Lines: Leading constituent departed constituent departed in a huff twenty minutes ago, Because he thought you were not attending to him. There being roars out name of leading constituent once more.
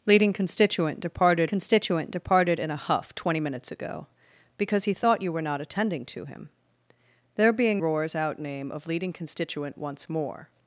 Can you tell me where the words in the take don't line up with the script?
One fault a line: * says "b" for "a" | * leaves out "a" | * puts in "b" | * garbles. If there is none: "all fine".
all fine